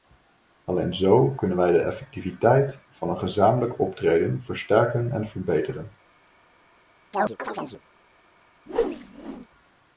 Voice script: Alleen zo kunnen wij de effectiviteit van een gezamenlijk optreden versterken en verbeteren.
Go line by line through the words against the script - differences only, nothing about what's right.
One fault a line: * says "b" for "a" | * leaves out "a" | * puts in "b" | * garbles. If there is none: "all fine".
all fine